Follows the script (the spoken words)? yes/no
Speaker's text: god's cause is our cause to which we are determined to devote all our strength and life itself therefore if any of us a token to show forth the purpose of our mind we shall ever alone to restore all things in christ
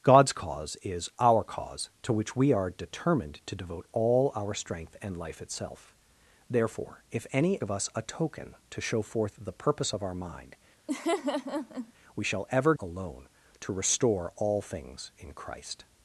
yes